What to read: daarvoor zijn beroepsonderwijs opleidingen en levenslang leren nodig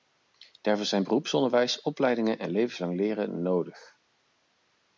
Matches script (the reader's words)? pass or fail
pass